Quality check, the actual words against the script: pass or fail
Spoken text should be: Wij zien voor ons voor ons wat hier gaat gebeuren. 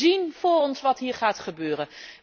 fail